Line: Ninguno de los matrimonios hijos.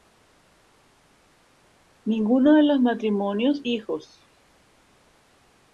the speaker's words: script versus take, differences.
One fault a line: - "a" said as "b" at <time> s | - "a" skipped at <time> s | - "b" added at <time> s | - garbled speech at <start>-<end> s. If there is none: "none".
none